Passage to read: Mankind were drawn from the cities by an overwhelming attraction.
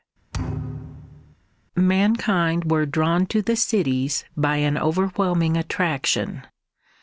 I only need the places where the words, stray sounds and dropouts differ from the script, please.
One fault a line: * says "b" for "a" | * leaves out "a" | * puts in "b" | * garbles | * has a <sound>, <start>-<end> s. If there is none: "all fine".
* has a thud, 0.3-1.4 s
* says "to" for "from"